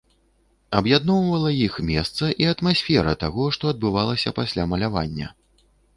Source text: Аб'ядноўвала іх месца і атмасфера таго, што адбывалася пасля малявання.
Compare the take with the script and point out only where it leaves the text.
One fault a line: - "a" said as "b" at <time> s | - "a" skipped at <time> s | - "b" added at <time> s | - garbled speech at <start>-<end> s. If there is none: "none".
none